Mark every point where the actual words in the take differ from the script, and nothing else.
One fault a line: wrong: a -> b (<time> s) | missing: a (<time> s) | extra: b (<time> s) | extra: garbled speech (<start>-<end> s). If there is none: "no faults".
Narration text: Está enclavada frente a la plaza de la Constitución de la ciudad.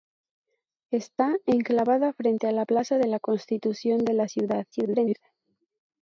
extra: garbled speech (4.7-5.2 s)